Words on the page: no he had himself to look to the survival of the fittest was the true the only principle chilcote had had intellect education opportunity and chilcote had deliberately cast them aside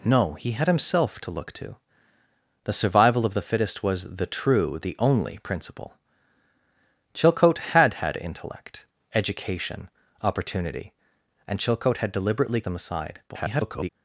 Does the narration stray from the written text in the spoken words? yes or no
yes